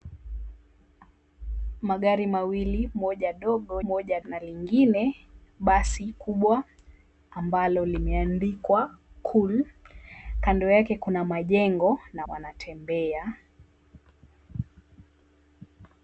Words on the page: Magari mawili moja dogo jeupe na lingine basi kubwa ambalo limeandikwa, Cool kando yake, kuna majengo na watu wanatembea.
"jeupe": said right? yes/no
no